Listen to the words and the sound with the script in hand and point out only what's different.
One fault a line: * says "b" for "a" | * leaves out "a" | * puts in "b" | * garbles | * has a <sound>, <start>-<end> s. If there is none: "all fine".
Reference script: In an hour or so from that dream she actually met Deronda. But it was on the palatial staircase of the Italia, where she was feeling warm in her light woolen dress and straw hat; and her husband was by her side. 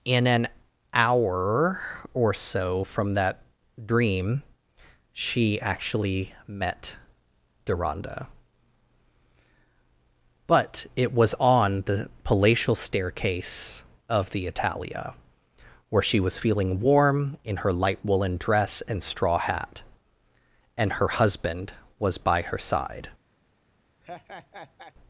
* has a laugh, 24.0-24.9 s